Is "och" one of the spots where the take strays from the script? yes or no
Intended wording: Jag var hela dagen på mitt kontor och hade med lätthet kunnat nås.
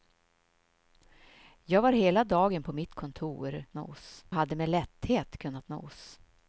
yes